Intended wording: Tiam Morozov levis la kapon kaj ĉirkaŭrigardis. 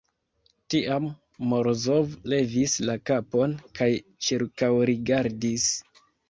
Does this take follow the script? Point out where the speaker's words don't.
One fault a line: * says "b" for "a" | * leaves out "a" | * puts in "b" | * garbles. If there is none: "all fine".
all fine